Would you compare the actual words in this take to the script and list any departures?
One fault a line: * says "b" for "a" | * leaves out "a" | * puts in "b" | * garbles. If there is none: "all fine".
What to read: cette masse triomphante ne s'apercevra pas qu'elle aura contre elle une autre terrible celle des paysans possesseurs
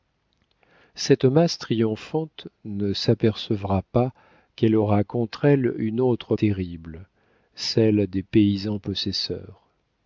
all fine